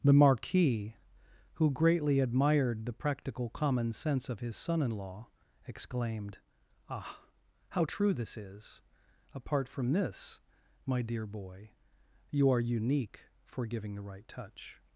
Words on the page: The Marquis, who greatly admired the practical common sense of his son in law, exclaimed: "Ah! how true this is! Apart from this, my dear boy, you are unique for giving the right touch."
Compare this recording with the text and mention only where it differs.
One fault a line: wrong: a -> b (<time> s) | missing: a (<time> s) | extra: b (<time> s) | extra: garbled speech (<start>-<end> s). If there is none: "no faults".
no faults